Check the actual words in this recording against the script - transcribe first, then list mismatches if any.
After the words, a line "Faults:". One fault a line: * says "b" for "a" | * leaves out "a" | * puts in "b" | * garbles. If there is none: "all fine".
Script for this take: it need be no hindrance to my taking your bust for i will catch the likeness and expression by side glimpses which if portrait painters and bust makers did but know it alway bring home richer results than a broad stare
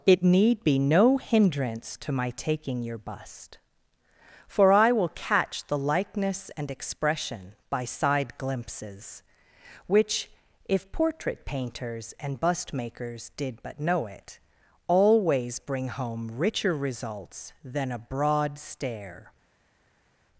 it need be no hindrance to my taking your bust for i will catch the likeness and expression by side glimpses which if portrait painters and bust makers did but know it always bring home richer results than a broad stare
Faults:
* says "always" for "alway"